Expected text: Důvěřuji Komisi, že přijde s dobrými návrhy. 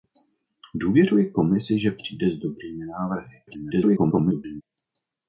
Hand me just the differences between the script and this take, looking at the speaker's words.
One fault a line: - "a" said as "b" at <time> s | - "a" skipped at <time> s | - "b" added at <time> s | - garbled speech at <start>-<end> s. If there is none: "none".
- garbled speech at 3.5-4.6 s